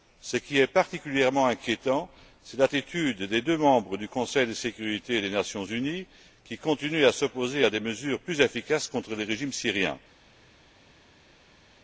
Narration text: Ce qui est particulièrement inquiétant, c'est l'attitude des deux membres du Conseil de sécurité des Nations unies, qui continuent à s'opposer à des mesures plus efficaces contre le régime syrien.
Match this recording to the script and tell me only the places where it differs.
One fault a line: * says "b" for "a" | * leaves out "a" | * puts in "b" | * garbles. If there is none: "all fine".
all fine